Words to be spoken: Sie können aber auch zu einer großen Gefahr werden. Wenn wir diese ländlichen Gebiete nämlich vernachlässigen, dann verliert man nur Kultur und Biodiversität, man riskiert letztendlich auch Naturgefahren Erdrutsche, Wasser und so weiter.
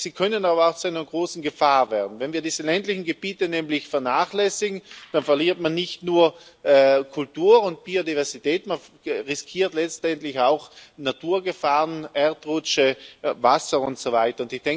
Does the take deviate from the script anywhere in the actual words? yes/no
yes